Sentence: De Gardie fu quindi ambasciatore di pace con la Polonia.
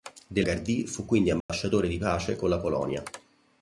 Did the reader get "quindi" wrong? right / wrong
right